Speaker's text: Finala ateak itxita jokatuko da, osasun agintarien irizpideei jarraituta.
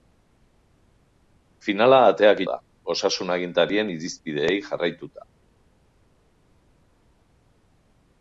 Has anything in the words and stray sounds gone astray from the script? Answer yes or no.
yes